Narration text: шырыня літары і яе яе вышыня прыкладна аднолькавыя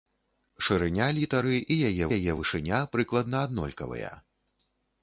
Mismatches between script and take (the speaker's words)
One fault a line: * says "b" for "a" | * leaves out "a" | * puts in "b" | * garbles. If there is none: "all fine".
all fine